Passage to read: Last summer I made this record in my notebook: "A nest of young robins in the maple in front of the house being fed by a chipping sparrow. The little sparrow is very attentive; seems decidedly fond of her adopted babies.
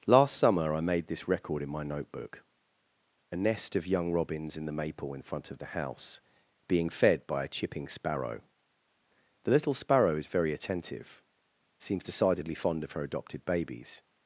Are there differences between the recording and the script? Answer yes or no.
no